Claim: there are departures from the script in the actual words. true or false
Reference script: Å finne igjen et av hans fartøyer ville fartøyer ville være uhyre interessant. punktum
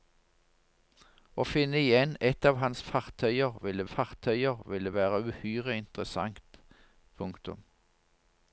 false